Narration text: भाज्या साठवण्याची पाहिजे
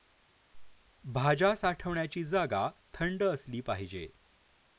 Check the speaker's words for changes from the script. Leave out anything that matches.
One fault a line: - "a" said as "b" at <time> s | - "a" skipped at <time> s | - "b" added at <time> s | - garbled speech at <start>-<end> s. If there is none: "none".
- "जागा थंड असली" added at 2.2 s